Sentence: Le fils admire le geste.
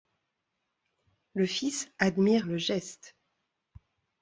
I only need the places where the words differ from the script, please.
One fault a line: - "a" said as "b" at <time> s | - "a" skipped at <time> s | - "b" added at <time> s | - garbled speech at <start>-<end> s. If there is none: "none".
none